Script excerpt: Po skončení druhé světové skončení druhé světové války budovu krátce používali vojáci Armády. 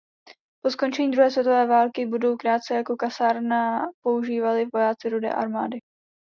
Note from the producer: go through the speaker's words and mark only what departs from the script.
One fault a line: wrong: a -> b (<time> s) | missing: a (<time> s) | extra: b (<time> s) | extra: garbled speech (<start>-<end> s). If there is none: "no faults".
missing: skončení druhé světové (1.7 s)
extra: jako kasárna (2.8 s)
extra: Rudé (5.1 s)